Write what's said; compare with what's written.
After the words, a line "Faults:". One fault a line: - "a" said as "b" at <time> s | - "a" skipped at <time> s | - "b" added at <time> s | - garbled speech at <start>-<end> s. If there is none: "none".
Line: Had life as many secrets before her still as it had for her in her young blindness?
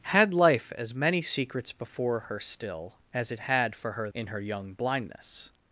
Had life as many secrets before her still as it had for her in her young blindness?
Faults:
none